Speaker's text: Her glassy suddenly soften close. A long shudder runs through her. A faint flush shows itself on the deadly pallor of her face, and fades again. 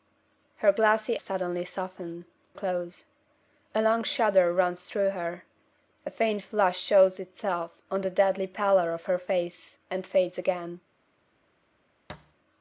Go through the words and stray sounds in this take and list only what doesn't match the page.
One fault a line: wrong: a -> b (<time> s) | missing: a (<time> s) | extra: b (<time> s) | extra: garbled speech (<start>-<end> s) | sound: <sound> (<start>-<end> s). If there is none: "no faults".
sound: thud (12.1-12.3 s)